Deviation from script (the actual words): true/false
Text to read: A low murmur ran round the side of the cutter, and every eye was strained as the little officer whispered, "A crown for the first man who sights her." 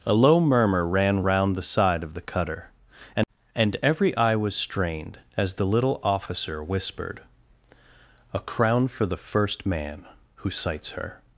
true